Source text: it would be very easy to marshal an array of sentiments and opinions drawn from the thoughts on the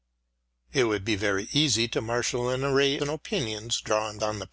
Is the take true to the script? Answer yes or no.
no